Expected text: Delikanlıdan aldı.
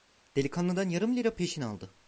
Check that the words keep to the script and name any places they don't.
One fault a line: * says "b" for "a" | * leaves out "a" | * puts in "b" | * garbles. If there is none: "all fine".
* puts in "yarım lira peşin"